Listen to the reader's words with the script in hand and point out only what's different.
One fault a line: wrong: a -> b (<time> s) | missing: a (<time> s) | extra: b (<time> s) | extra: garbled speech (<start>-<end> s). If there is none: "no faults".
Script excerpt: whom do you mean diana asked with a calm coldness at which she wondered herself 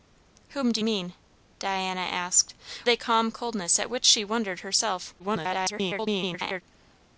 missing: you (0.8 s)
missing: with (2.5 s)
extra: garbled speech (5.2-6.6 s)